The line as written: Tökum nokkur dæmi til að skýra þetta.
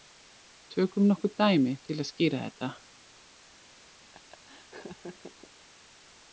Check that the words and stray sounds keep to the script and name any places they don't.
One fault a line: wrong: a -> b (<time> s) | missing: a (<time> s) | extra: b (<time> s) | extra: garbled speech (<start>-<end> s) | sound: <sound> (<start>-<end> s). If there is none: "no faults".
sound: laugh (4.1-5.5 s)